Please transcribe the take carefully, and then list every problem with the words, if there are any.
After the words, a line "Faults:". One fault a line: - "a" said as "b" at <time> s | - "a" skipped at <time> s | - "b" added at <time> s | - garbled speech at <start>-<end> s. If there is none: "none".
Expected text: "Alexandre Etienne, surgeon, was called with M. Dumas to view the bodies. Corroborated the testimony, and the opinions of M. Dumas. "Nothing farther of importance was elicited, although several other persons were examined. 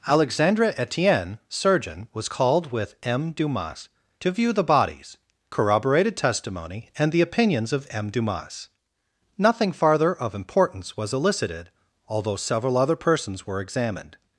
"Alexandre Etienne, surgeon, was called with M. Dumas to view the bodies. Corroborated testimony, and the opinions of M. Dumas. "Nothing farther of importance was elicited, although several other persons were examined.
Faults:
- "the" skipped at 6.2 s